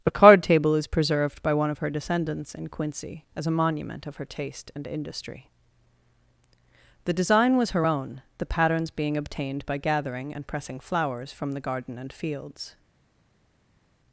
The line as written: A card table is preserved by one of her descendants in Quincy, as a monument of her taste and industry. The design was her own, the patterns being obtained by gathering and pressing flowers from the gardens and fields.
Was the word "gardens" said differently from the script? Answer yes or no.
yes